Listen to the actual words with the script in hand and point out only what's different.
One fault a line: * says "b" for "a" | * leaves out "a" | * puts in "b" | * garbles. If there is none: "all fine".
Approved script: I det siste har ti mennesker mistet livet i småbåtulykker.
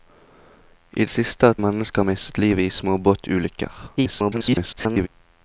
* leaves out "det"
* leaves out "ti"
* garbles